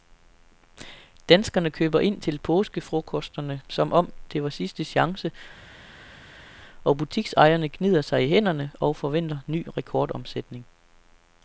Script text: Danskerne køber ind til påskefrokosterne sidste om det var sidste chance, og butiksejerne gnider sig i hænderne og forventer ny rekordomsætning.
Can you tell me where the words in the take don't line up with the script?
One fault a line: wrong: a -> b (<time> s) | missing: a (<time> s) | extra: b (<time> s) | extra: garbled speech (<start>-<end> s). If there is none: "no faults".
wrong: sidste -> som (3.7 s)